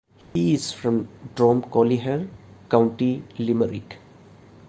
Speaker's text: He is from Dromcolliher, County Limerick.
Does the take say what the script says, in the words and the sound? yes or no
no